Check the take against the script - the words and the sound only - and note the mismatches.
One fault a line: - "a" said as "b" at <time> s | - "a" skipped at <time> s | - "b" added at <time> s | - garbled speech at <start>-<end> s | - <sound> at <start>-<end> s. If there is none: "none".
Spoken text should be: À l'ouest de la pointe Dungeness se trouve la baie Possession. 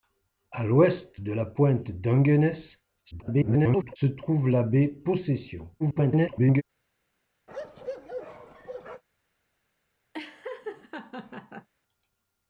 - garbled speech at 3.1-4.0 s
- garbled speech at 5.8-6.6 s
- bark at 7.5-9.0 s
- laugh at 10.1-11.7 s